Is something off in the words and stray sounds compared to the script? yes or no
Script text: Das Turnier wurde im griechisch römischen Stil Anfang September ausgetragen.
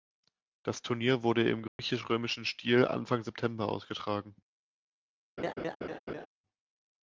yes